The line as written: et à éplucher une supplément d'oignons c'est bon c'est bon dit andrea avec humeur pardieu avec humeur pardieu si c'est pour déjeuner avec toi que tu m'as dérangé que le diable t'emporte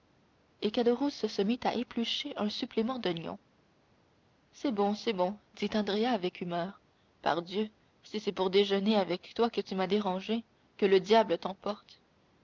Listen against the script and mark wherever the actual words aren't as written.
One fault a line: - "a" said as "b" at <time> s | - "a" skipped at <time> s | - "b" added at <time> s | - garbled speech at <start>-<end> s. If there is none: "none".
- "caderousse se mit" added at 0.7 s
- "une" said as "un" at 2.4 s
- "avec humeur pardieu" skipped at 7.7 s